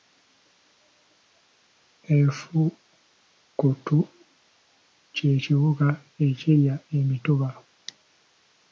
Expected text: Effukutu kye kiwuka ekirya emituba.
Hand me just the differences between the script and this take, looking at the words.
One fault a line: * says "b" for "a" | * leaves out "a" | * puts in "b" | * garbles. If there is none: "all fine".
all fine